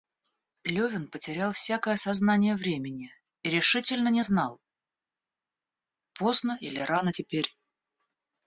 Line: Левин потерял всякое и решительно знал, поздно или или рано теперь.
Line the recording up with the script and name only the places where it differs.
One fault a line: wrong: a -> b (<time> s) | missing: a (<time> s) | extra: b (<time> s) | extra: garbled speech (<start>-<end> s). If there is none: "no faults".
extra: сознание времени (1.9 s)
extra: не (4.1 s)
missing: или (6.8 s)